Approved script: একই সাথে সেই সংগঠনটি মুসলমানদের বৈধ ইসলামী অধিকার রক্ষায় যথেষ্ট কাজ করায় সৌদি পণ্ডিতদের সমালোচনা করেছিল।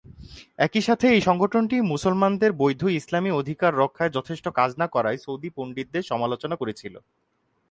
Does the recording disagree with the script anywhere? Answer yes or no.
yes